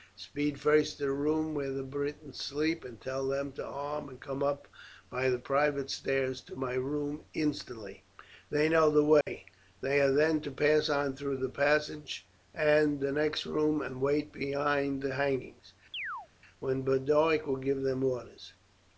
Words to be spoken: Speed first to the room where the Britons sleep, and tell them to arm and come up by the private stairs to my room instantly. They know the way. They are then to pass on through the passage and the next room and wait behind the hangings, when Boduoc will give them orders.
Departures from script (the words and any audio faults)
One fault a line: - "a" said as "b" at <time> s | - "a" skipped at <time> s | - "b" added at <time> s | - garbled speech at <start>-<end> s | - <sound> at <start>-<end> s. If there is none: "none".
- dropout at 9.2-9.3 s
- chirp at 15.9-16.3 s